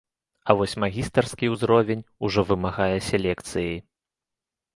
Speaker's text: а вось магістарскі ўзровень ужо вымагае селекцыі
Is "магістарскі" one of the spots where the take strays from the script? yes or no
no